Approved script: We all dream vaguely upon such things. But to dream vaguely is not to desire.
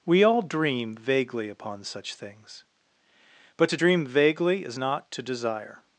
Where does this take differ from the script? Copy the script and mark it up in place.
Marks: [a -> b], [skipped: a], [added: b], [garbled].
We all dream vaguely upon such things. But to dream vaguely is not to desire.